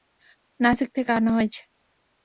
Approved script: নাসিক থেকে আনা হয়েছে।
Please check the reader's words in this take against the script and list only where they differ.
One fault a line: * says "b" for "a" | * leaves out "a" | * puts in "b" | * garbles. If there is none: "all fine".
all fine